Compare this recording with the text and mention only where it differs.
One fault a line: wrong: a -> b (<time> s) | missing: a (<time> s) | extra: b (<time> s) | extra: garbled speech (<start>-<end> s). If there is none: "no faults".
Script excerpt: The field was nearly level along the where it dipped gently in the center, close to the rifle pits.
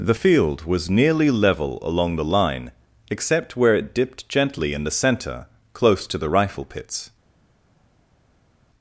extra: line except (2.2 s)